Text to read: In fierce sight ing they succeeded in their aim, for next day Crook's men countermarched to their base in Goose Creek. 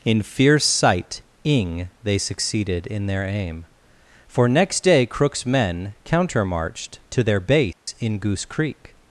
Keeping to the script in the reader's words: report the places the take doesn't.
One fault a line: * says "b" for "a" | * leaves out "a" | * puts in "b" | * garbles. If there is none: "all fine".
all fine